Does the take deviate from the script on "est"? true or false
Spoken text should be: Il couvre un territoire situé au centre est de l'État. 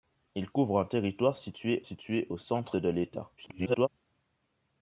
true